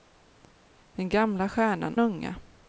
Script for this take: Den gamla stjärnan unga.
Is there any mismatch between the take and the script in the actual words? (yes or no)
no